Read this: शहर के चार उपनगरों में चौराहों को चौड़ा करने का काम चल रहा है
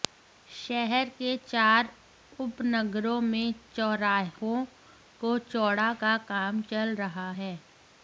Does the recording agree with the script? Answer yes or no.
no